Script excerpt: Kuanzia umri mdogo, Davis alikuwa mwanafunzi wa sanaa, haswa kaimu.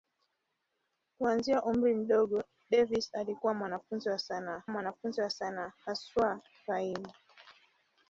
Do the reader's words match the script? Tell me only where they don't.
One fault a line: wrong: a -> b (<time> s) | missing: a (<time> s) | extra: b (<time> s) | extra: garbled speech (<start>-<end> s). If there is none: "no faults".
extra: mwanafunzi wa sanaa (4.7 s)